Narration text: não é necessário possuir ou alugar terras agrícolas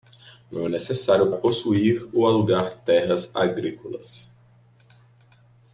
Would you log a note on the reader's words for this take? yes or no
no